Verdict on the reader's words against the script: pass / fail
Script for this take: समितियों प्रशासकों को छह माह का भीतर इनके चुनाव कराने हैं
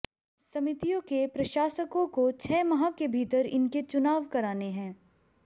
fail